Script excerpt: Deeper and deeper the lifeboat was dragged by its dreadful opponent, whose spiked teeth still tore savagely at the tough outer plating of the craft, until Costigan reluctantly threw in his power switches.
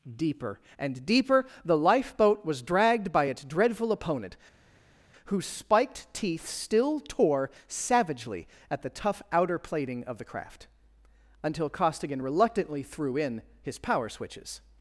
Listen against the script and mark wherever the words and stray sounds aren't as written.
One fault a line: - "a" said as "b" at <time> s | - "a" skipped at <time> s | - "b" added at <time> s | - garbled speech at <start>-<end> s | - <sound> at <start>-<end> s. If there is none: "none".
none